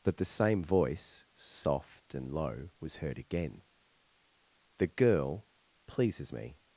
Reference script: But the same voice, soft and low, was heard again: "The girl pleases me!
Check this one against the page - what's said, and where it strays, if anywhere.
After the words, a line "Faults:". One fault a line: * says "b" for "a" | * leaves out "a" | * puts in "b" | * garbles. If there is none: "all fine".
But the same voice, soft and low, was heard again: "The girl pleases me!
Faults:
all fine